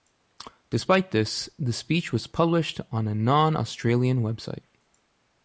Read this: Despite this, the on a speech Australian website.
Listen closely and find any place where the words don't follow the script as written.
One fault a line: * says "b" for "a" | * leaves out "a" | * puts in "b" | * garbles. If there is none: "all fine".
* puts in "speech was published"
* says "non" for "speech"